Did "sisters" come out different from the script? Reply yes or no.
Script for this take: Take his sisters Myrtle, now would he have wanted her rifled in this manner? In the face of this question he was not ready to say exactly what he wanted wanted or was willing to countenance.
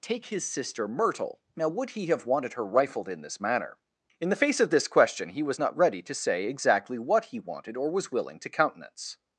yes